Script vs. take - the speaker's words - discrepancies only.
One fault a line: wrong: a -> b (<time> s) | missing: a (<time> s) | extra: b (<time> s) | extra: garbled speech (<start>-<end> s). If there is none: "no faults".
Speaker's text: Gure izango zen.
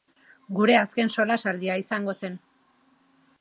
extra: azken solasaldia (0.8 s)